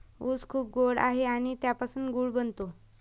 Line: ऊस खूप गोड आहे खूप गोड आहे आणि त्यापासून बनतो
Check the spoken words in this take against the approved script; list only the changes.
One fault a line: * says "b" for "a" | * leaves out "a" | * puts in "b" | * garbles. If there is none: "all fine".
* leaves out "खूप गोड आहे"
* puts in "गूळ"